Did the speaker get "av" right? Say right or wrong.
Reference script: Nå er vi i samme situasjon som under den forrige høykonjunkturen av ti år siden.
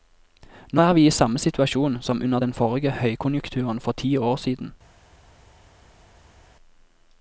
wrong